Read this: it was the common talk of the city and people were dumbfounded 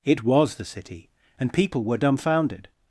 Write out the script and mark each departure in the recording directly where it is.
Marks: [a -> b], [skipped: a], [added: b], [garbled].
it was the [skipped: common talk of the] city and people were dumbfounded